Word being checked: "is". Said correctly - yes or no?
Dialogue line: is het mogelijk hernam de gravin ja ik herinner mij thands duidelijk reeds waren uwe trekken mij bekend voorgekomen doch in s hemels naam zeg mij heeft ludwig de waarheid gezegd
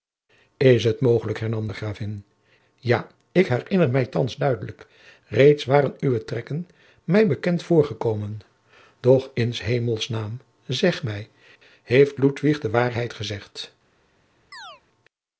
yes